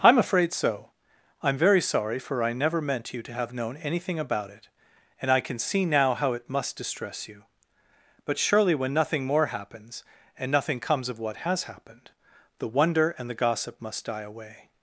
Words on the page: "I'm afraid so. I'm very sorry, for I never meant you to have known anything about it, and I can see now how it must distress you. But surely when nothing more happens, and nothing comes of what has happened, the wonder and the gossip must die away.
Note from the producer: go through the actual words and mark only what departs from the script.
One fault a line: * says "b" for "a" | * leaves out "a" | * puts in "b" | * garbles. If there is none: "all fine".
all fine